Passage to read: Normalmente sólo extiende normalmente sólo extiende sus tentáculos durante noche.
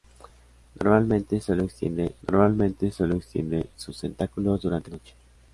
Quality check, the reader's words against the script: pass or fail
pass